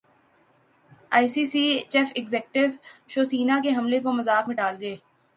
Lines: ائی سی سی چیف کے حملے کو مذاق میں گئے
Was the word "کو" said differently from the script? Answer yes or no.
no